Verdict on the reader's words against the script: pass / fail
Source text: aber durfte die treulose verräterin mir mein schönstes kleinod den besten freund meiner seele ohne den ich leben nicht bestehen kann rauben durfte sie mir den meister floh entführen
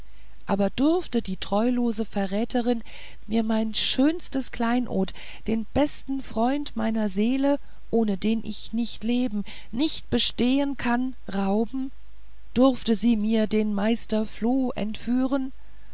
fail